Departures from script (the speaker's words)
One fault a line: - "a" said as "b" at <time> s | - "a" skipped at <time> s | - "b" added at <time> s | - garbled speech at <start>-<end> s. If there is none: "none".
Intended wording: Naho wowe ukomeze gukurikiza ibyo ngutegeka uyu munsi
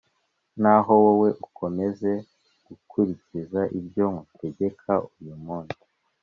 none